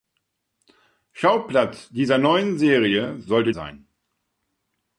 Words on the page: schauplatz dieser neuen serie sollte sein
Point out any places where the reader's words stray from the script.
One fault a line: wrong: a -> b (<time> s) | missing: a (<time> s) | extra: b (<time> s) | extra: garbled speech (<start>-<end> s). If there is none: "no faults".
no faults